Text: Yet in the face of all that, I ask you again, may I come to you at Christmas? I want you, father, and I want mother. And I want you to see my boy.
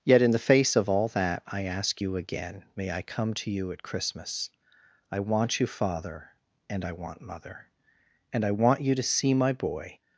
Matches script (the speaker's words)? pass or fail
pass